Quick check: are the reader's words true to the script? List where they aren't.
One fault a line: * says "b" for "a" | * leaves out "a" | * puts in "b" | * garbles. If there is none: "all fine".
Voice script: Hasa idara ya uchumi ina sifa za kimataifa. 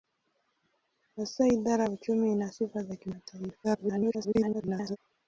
* garbles